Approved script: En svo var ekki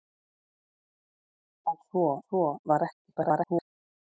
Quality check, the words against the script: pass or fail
fail